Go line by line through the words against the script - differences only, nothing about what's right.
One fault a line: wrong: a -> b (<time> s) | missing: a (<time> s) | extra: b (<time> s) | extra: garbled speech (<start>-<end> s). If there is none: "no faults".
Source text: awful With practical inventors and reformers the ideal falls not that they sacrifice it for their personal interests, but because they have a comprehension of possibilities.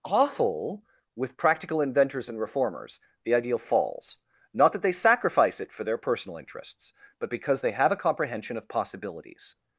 no faults